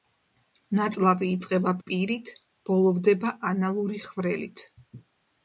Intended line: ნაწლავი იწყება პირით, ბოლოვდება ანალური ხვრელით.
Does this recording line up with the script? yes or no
yes